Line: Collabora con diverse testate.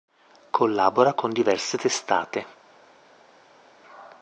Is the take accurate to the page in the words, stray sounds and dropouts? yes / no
yes